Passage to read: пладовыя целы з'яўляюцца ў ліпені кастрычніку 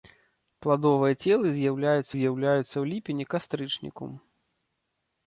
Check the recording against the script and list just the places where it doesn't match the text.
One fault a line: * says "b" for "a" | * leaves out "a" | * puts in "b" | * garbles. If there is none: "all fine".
* puts in "з'яўляюцца"